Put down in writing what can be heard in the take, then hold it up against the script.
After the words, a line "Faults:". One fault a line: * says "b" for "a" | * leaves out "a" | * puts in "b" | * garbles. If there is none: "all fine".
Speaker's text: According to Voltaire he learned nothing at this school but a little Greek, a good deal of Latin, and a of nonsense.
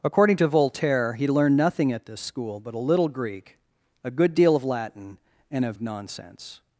According to Voltaire he learned nothing at this school but a little Greek, a good deal of Latin, and a of nonsense.
Faults:
all fine